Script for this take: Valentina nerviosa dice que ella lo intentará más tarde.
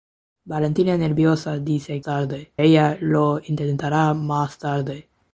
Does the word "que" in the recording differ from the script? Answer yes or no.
yes